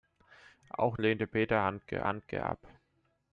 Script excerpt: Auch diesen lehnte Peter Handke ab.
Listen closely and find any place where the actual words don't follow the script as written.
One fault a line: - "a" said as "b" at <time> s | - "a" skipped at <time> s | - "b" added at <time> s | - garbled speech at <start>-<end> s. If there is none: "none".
- "diesen" skipped at 1.0 s
- "Handke" added at 2.0 s